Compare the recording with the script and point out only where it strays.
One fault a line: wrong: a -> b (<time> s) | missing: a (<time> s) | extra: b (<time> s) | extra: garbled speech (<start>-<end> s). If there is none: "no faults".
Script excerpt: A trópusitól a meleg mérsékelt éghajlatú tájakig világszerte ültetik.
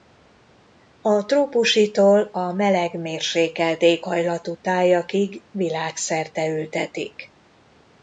no faults